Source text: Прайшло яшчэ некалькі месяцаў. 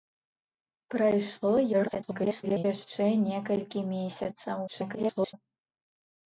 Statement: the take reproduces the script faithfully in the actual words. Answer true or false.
false